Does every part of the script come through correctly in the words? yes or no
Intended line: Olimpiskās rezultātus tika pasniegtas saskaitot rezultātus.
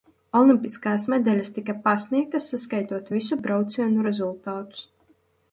no